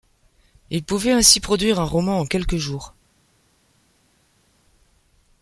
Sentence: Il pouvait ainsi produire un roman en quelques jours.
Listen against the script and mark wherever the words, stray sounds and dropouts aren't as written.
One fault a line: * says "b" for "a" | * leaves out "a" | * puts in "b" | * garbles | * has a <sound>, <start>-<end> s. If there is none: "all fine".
all fine